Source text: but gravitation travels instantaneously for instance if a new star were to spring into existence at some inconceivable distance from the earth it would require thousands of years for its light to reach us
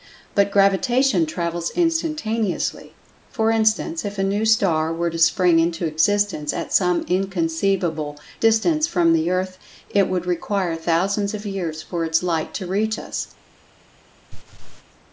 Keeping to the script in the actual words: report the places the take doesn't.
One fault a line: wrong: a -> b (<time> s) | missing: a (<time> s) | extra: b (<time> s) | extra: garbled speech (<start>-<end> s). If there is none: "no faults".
no faults